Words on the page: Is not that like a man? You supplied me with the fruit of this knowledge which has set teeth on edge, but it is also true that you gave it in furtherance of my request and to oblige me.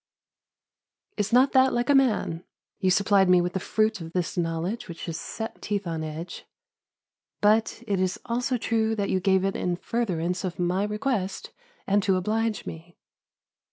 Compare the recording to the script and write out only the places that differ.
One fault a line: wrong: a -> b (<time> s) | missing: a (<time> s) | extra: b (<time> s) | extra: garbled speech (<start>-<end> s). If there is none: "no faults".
no faults